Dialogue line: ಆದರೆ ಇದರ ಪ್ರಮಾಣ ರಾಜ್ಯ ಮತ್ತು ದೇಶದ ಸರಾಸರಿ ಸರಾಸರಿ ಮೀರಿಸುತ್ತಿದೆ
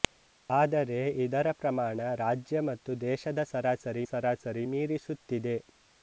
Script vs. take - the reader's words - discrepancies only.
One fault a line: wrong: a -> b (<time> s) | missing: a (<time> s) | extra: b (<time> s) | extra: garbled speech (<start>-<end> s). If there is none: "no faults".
no faults